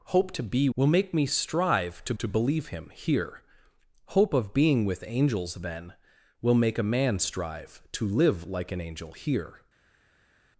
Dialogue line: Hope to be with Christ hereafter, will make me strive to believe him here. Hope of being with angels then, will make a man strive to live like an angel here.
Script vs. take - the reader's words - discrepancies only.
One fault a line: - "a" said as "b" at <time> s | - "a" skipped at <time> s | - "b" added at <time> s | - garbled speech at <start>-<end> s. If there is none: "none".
- "with Christ hereafter" skipped at 0.7 s
- "to" added at 2.2 s